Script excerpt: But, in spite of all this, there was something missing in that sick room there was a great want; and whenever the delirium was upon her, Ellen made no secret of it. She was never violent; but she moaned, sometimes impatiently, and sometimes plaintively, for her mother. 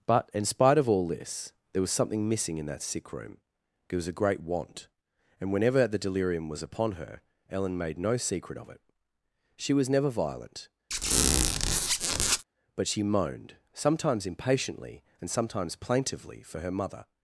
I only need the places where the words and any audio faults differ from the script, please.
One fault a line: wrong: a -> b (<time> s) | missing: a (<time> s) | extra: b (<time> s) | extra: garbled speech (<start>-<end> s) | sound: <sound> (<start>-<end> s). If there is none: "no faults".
wrong: there -> it (3.9 s)
sound: squeak (10.9-12.4 s)